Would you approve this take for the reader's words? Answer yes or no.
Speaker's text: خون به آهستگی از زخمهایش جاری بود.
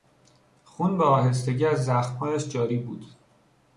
yes